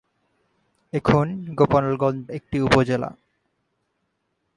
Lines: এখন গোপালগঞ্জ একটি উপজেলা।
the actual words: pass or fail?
pass